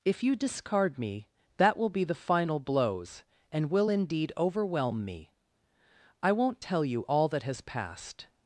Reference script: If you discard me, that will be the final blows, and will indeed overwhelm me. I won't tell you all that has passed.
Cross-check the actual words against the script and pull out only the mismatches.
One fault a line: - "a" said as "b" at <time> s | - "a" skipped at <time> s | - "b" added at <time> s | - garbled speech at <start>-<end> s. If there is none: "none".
none